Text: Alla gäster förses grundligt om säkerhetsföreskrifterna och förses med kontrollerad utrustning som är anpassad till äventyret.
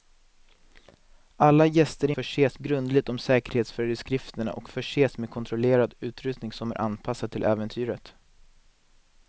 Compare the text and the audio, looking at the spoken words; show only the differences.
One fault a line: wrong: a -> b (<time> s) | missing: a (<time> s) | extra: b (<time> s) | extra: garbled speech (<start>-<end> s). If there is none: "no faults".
no faults